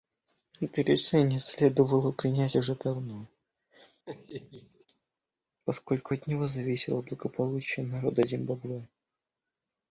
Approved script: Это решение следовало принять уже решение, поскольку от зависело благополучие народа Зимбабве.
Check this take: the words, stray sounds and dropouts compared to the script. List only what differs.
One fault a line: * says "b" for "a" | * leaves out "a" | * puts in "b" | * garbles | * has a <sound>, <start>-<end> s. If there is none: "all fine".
* says "давно" for "решение"
* has a laugh, 4.0-4.9 s
* puts in "него"